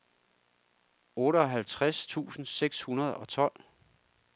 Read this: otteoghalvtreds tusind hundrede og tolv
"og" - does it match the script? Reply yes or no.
yes